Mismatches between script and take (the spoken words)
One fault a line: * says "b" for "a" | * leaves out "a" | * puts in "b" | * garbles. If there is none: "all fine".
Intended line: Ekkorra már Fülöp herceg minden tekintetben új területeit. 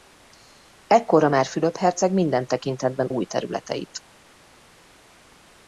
all fine